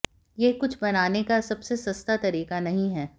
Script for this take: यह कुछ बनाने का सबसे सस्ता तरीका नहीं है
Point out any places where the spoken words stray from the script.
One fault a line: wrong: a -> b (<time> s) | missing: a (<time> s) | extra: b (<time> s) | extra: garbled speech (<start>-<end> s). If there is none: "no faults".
no faults